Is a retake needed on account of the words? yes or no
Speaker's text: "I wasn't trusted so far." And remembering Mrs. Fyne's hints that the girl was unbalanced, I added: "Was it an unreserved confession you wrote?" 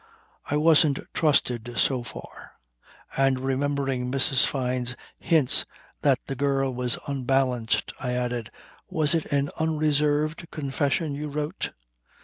no